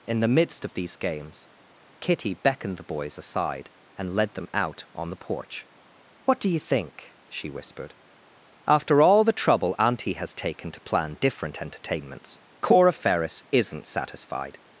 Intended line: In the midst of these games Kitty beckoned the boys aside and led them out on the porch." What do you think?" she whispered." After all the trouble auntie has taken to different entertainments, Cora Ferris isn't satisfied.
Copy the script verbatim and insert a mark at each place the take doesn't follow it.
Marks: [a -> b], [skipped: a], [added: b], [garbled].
In the midst of these games Kitty beckoned the boys aside and led them out on the porch." What do you think?" she whispered." After all the trouble auntie has taken to [added: plan] different entertainments, Cora Ferris isn't satisfied.